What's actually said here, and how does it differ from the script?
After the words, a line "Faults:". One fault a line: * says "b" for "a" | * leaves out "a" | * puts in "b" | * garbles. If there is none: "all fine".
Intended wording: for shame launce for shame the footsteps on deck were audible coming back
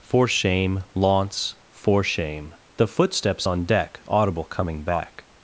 for shame launce for shame the footsteps on deck audible coming back
Faults:
* leaves out "were"